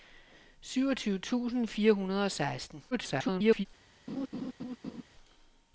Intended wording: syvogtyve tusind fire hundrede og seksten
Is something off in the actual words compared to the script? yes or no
yes